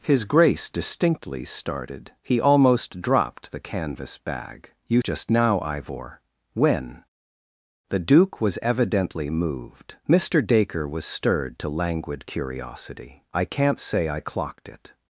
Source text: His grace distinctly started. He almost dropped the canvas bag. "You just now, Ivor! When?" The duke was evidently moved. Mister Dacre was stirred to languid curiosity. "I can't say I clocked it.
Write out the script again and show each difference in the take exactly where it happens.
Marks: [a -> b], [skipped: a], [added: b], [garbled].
His grace distinctly started. He almost dropped the canvas bag. "You just now, Ivor! When?" The duke was evidently moved. Mister Dacre was stirred to languid curiosity. "I can't say I clocked it.